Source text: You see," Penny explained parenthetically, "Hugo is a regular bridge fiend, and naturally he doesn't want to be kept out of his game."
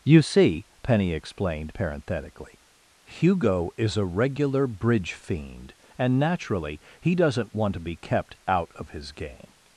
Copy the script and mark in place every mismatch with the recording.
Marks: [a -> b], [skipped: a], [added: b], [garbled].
You see," Penny explained parenthetically, "Hugo is a regular bridge fiend, and naturally he doesn't want to be kept out of his game."